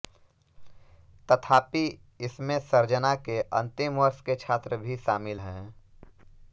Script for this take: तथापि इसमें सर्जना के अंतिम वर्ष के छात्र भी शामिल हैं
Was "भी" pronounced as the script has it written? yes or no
yes